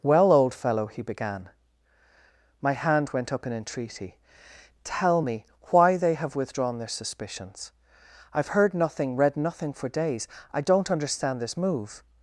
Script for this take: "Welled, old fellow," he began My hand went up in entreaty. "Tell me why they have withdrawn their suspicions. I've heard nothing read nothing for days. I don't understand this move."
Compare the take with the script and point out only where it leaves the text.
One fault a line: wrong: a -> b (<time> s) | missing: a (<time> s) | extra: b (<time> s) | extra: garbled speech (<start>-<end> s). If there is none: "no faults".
wrong: Welled -> Well (0.0 s)